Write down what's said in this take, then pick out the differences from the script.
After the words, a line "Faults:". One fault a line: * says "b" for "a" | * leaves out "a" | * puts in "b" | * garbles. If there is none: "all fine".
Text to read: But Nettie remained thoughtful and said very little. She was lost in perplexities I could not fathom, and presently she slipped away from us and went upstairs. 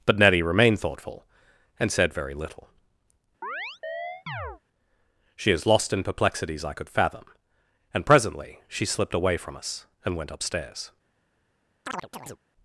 But Nettie remained thoughtful and said very little. She is lost in perplexities I could fathom, and presently she slipped away from us and went upstairs.
Faults:
* says "is" for "was"
* leaves out "not"